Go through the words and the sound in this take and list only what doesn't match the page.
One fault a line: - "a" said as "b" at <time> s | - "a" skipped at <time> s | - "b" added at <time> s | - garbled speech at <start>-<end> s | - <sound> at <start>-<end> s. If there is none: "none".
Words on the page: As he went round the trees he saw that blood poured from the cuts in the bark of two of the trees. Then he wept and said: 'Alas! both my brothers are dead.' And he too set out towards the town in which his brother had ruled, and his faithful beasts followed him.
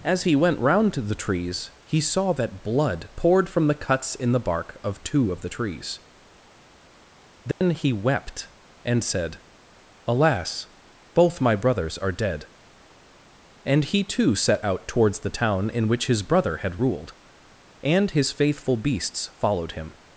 - "to" added at 0.9 s
- dropout at 7.5-7.6 s